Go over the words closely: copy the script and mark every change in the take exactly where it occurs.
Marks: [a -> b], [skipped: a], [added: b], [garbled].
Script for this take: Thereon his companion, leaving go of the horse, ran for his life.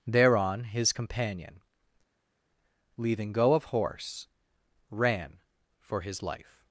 Thereon his companion, leaving go of [skipped: the] horse, ran for his life.